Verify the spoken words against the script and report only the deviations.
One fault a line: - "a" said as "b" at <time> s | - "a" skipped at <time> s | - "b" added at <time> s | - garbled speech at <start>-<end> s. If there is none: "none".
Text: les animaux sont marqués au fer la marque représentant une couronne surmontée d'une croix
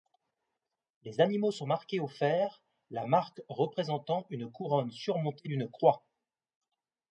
none